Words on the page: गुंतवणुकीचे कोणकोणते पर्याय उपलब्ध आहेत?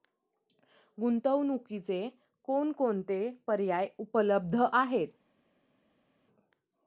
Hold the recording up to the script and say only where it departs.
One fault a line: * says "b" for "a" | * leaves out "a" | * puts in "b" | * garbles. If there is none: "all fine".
all fine